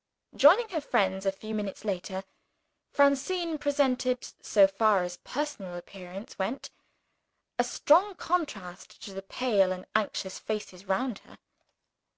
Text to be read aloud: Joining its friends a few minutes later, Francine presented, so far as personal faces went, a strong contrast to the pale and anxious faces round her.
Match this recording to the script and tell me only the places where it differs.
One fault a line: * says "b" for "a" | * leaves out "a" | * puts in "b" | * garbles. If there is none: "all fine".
* says "her" for "its"
* says "appearance" for "faces"